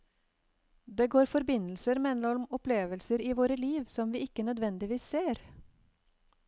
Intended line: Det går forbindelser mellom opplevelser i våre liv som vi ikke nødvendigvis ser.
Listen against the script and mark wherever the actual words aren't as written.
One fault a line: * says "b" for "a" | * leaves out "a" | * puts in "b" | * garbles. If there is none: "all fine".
all fine